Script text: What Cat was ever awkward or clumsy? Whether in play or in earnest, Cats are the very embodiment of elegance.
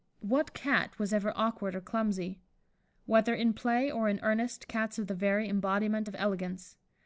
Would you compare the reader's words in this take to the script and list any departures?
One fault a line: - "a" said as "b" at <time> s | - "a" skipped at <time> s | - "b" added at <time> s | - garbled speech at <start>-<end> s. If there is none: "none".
none